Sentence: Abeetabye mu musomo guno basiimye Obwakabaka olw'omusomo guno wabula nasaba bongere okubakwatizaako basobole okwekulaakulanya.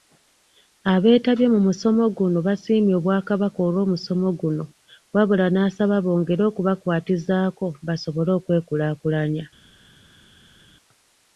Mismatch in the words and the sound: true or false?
false